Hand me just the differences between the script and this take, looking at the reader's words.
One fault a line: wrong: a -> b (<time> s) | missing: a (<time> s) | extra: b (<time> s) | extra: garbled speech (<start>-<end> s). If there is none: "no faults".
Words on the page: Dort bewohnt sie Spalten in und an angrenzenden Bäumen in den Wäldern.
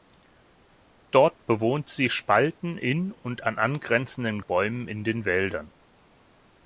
no faults